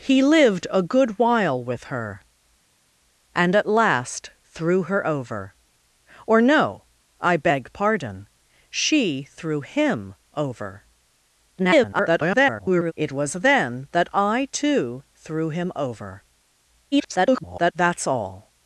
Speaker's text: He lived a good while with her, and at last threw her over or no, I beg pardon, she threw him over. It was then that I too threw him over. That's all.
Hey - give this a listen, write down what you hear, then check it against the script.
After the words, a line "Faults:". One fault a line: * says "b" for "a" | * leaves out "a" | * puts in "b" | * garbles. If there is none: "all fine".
He lived a good while with her, and at last threw her over or no, I beg pardon, she threw him over. [garbled] It was then that I too threw him over. [garbled] That's all.
Faults:
* garbles
* garbles